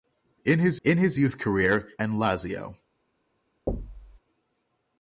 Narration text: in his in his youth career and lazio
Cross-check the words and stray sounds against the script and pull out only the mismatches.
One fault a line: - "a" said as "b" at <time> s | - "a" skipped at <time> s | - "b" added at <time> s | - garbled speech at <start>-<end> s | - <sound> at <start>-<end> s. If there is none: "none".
- thud at 3.7-4.2 s